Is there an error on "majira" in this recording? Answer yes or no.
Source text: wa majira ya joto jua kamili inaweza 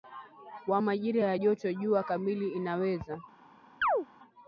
no